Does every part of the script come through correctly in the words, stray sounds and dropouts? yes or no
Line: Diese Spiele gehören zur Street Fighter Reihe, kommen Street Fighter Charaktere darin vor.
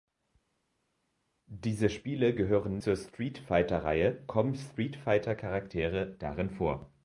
yes